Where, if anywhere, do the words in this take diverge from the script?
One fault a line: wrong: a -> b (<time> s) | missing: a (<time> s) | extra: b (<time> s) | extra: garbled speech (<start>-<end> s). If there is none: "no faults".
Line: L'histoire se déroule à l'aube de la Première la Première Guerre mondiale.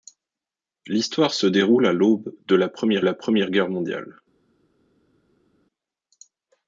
no faults